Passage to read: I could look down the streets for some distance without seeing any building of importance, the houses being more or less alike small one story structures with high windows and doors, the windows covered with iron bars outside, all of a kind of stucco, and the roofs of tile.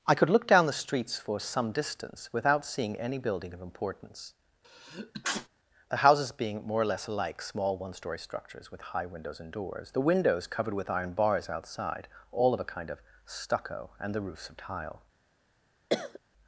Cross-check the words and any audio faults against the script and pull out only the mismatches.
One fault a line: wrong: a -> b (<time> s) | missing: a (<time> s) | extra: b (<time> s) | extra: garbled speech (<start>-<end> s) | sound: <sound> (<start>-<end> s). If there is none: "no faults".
sound: sneeze (4.6-5.5 s)
sound: cough (15.9-16.2 s)